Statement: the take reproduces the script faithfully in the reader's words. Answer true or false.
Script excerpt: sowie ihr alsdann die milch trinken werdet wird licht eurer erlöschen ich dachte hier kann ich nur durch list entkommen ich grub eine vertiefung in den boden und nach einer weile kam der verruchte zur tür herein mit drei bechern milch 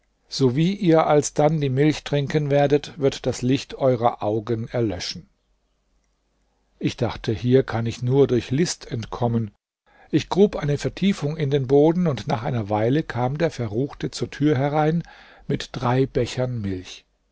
false